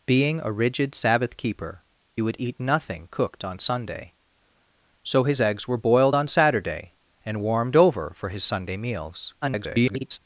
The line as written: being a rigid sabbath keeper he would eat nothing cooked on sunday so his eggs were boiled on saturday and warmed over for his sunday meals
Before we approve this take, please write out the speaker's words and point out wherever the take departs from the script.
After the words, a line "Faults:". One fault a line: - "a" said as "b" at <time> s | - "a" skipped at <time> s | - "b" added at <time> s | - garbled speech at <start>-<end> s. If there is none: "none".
being a rigid sabbath keeper would eat nothing cooked on sunday so his eggs were boiled on saturday and warmed over for his sunday meals [garbled]
Faults:
- "he" skipped at 1.8 s
- garbled speech at 9.4-10.2 s